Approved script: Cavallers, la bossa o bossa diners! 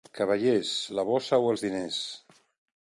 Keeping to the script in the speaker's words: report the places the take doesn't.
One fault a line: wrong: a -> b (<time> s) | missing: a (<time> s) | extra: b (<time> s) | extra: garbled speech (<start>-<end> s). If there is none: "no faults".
wrong: bossa -> els (1.5 s)